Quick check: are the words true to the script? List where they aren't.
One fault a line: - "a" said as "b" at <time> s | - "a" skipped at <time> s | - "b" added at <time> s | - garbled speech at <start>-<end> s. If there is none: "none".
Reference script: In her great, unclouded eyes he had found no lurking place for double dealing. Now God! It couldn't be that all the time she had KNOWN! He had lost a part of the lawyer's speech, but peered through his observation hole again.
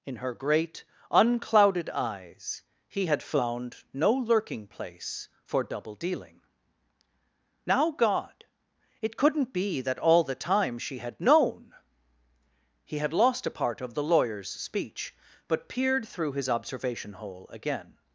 none